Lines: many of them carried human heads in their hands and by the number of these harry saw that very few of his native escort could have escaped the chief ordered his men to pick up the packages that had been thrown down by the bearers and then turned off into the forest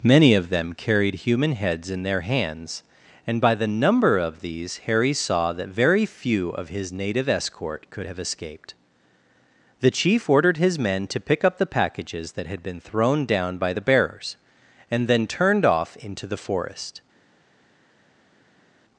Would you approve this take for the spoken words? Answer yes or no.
yes